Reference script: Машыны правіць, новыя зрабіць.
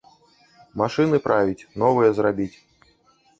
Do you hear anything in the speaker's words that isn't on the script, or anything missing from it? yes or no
no